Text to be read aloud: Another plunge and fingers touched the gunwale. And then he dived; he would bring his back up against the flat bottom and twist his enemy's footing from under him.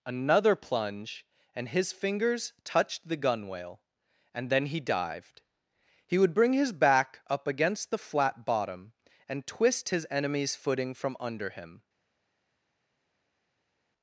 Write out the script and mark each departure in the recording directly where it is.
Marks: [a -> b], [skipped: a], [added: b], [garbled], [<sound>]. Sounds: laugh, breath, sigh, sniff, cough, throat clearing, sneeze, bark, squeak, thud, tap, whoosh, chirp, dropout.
Another plunge and [added: his] fingers touched the gunwale. And then he dived; he would bring his back up against the flat bottom and twist his enemy's footing from under him.